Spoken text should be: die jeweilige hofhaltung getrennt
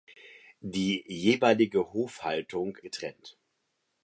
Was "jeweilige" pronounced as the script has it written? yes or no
yes